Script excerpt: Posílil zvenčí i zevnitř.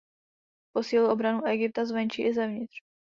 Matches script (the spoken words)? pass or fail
fail